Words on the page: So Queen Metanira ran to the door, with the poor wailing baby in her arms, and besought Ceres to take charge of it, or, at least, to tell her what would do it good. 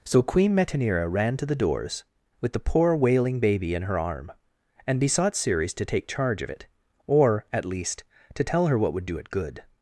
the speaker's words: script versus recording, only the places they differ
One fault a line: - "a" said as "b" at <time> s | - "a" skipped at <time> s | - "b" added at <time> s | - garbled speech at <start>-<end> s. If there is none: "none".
- "door" said as "doors" at 1.6 s
- "arms" said as "arm" at 4.0 s